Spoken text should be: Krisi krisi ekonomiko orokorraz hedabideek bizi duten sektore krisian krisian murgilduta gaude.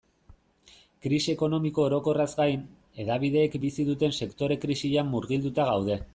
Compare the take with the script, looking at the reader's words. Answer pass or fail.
fail